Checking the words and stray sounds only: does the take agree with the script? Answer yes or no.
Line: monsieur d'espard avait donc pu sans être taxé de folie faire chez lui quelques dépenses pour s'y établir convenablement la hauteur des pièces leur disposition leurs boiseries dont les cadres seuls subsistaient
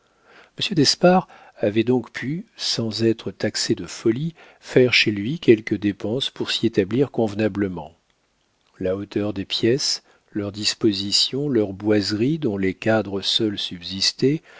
yes